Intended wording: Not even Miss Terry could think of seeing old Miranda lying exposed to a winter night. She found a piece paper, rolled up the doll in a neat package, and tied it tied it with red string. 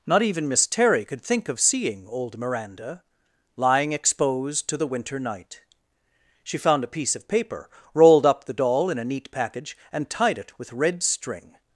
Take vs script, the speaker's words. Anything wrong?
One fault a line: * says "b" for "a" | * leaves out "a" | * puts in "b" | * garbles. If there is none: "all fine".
* says "the" for "a"
* puts in "of"
* leaves out "tied it"